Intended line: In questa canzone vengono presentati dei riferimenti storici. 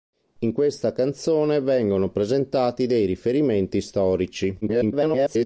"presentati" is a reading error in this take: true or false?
false